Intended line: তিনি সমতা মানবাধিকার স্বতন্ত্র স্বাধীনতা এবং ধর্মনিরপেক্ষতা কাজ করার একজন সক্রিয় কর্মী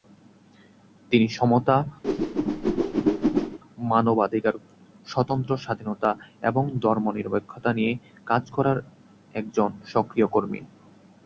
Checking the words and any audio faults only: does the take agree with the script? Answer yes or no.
no